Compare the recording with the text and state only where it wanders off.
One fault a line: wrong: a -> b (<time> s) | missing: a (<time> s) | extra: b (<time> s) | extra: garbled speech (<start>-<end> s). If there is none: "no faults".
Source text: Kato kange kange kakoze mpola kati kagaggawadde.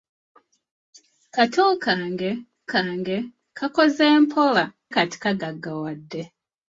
no faults